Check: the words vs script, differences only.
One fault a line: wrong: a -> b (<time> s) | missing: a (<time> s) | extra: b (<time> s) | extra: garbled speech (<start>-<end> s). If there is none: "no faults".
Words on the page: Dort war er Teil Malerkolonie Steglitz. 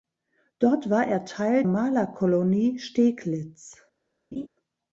no faults